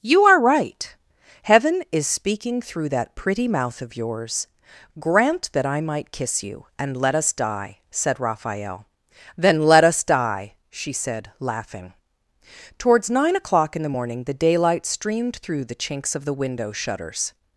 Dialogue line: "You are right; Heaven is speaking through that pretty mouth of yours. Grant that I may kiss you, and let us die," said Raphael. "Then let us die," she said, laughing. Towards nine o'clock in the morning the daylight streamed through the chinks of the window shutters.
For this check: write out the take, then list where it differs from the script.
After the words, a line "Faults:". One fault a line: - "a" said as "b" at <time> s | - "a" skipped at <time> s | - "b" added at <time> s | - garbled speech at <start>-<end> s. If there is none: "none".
"You are right; Heaven is speaking through that pretty mouth of yours. Grant that I might kiss you, and let us die," said Raphael. "Then let us die," she said, laughing. Towards nine o'clock in the morning the daylight streamed through the chinks of the window shutters.
Faults:
- "may" said as "might" at 5.8 s